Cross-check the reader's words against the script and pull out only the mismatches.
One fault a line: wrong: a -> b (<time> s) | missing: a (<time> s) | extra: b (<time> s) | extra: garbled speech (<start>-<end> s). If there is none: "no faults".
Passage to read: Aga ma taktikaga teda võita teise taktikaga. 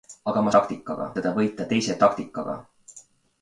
no faults